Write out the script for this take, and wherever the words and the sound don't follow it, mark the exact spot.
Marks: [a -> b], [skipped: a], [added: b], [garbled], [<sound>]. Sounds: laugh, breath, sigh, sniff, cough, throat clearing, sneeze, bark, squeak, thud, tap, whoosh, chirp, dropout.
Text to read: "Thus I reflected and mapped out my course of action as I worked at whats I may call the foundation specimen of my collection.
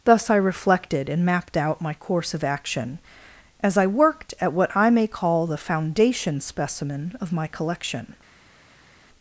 "Thus I reflected and mapped out my course of action as I worked at [whats -> what] I may call the foundation specimen of my collection.